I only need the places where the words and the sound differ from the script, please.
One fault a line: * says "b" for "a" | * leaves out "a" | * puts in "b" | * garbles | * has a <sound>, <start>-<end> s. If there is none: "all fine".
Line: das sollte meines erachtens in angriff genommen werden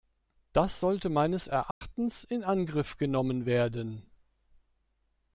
* has a dropout, 1.7-1.8 s